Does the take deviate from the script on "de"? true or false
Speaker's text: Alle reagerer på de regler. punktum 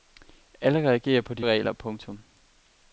false